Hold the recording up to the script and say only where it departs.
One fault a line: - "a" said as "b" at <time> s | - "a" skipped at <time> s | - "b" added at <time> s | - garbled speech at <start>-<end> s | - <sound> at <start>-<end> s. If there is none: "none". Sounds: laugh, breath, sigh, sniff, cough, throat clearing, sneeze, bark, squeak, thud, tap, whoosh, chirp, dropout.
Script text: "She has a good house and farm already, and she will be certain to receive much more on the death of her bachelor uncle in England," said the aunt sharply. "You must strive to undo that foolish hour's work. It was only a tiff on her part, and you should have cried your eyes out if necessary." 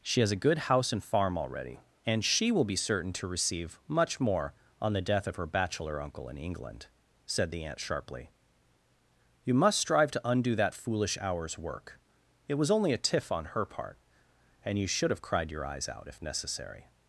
none